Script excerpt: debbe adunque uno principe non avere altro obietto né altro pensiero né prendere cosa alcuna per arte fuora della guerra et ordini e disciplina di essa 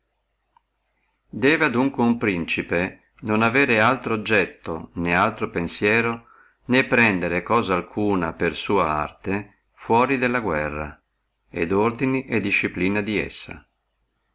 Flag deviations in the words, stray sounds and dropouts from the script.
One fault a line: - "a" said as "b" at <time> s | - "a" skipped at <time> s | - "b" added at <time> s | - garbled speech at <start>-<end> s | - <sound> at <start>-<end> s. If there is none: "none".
- "sua" added at 8.6 s